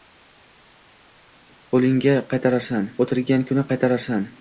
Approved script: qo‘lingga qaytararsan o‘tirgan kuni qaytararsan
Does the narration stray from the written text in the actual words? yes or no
no